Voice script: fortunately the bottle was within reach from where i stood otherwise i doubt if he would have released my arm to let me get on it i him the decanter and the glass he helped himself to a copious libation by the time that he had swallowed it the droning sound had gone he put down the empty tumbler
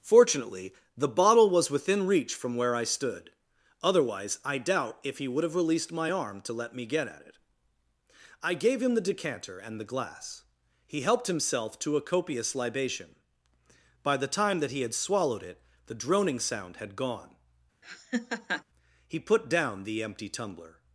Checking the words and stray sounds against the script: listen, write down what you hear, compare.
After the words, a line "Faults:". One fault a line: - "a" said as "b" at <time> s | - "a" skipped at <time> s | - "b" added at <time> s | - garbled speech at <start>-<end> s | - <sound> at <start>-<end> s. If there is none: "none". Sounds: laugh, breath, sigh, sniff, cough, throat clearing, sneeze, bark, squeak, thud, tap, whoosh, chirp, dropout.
fortunately the bottle was within reach from where i stood otherwise i doubt if he would have released my arm to let me get at it i gave him the decanter and the glass he helped himself to a copious libation by the time that he had swallowed it the droning sound had gone he put down the empty tumbler
Faults:
- "on" said as "at" at 7.1 s
- "gave" added at 8.5 s
- laugh at 17.8-18.6 s